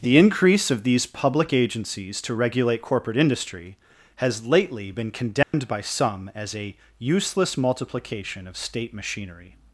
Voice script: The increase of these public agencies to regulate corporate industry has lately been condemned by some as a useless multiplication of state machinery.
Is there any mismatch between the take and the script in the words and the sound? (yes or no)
yes